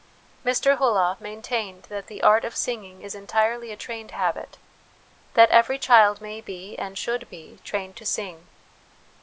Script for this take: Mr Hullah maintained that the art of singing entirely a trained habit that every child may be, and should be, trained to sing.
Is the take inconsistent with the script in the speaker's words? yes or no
yes